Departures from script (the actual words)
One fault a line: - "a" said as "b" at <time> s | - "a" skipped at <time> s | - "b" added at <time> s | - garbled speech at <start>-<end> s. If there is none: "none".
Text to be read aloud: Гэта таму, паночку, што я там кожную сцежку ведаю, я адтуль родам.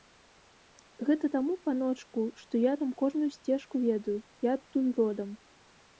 none